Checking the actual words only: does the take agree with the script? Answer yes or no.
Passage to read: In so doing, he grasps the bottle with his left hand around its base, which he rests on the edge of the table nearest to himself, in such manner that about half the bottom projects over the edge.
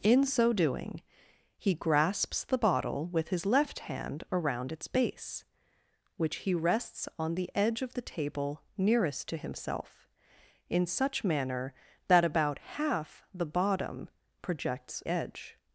no